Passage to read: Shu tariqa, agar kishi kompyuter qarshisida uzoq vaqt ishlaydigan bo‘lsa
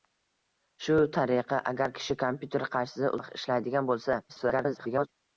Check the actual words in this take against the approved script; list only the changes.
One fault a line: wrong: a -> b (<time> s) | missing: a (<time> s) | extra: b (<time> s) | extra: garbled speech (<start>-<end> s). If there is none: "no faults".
missing: uzoq (3.1 s)
extra: garbled speech (4.3-5.1 s)